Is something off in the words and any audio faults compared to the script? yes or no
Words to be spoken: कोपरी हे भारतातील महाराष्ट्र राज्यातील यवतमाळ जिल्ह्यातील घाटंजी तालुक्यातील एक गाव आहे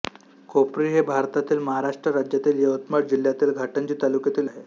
yes